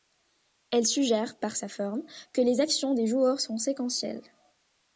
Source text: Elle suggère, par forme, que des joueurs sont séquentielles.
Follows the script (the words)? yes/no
no